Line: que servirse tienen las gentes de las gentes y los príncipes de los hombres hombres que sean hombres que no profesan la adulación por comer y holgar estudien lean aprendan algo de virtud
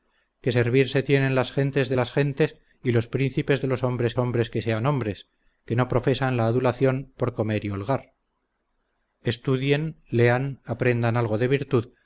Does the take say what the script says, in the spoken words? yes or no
yes